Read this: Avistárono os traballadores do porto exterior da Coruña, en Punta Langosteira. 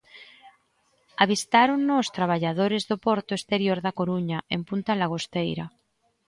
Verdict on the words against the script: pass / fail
pass